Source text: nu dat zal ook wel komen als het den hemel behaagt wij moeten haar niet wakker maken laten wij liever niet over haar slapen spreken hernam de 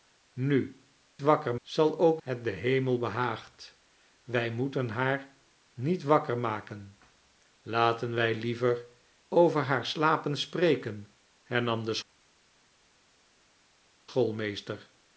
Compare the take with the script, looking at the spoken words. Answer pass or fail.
fail